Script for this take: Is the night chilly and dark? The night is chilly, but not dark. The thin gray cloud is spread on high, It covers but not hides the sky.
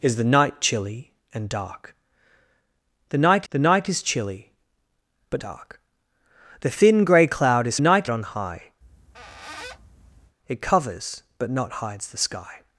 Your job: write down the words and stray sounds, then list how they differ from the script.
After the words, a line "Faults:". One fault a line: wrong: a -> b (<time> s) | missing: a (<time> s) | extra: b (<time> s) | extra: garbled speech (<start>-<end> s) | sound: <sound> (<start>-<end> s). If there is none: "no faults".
Is the night chilly and dark? The night the night is chilly, but dark. The thin gray cloud is night on high, It covers but not hides the sky.
Faults:
extra: the night (3.5 s)
missing: not (5.4 s)
wrong: spread -> night (7.8 s)
sound: squeak (8.8-10.4 s)